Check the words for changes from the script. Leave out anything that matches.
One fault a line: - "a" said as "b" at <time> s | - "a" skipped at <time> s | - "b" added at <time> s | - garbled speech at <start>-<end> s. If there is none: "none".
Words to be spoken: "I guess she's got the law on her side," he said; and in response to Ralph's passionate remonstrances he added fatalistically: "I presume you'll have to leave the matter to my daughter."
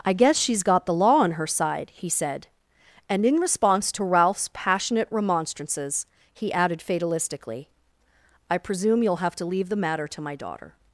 none